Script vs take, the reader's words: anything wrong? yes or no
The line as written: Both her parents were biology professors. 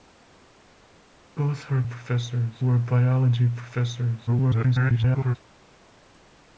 yes